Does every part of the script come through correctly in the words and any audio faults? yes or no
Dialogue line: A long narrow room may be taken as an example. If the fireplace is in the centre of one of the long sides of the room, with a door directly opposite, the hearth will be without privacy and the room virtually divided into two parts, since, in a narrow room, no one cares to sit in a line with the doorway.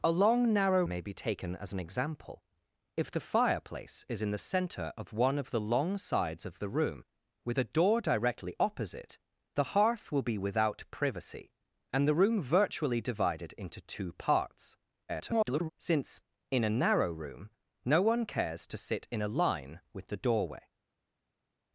no